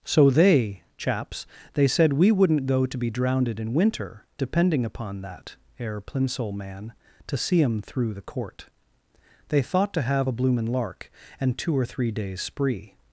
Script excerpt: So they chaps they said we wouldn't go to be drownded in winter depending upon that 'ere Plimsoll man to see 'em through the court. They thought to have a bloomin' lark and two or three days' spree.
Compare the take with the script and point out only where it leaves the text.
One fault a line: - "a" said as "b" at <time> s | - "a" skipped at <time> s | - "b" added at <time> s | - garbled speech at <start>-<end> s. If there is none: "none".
none